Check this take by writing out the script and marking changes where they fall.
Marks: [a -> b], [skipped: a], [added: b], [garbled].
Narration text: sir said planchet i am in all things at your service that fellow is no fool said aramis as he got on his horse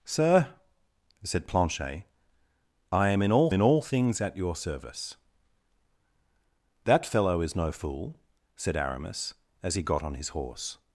sir said planchet i am in all [added: in all] things at your service that fellow is no fool said aramis as he got on his horse